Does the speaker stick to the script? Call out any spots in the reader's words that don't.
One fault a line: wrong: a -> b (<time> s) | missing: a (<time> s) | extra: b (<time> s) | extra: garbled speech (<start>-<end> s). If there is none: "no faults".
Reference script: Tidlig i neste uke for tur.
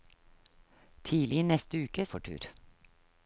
no faults